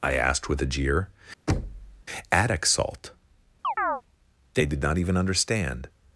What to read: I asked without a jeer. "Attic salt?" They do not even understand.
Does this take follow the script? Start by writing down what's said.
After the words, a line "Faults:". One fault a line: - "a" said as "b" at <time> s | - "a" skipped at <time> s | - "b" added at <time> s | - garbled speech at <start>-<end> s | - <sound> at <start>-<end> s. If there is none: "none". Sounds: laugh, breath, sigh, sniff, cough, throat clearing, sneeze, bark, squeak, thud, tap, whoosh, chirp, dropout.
I asked with a jeer. "Attic salt?" They did not even understand.
Faults:
- "without" said as "with" at 0.5 s
- thud at 1.5-2.0 s
- chirp at 3.6-4.0 s
- "do" said as "did" at 4.7 s